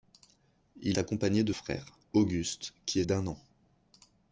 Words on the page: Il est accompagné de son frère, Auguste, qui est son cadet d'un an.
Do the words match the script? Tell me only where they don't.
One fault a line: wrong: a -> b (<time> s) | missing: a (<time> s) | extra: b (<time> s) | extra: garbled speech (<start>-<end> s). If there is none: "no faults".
missing: est (1.0 s)
missing: son (1.5 s)
missing: son cadet (3.0 s)